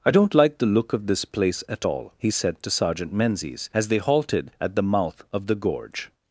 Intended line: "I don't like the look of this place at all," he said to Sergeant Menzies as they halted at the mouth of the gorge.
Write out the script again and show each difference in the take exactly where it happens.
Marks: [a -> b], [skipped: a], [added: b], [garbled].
"I don't like the look of this place at all," he said to Sergeant Menzies as they halted at the mouth of the gorge.